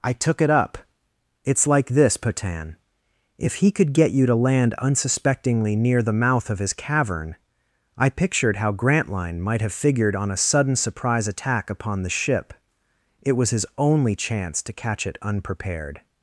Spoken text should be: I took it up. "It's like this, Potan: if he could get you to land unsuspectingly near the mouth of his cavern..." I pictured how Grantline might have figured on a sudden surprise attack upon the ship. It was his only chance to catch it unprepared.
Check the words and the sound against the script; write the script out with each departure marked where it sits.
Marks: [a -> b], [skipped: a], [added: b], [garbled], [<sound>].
I took it up. "It's like this, Potan: if he could get you to land unsuspectingly near the mouth of his cavern..." I pictured how Grantline might have figured on a sudden surprise attack upon the ship. It was his only chance to catch it unprepared.